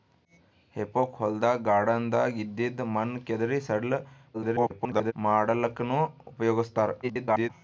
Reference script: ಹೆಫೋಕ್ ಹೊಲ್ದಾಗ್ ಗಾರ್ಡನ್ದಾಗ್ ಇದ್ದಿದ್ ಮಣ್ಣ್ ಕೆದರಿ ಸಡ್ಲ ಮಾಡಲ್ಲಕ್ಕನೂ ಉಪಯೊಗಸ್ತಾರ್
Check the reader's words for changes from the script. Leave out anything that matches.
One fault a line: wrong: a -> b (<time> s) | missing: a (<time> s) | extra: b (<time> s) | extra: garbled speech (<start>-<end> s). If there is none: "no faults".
extra: garbled speech (4.3-5.1 s)
extra: garbled speech (7.0-7.5 s)